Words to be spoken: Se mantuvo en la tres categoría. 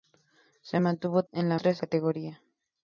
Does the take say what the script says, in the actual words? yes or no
yes